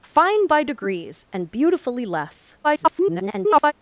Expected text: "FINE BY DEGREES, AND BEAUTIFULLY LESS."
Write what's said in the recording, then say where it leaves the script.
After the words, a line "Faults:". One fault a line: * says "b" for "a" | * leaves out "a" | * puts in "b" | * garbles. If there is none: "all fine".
"FINE BY DEGREES, AND BEAUTIFULLY LESS." [garbled]
Faults:
* garbles